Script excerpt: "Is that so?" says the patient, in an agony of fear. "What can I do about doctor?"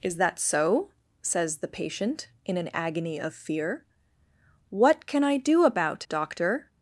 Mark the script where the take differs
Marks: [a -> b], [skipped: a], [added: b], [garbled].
"Is that so?" says the patient, in an agony of fear. "What can I do about doctor?"